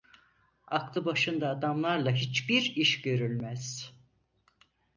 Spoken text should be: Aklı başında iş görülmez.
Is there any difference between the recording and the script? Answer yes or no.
yes